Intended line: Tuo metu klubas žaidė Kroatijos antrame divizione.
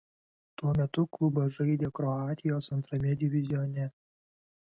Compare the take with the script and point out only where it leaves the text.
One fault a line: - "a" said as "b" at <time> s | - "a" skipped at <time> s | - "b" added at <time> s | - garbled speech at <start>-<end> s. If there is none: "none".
none